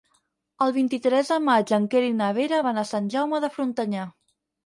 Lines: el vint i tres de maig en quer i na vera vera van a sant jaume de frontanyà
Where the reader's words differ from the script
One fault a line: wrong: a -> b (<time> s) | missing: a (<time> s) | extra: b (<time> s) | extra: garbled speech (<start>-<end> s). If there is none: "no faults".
missing: vera (2.6 s)